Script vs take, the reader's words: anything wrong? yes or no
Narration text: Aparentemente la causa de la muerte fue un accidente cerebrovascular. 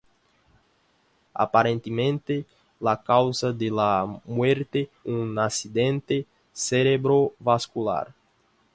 yes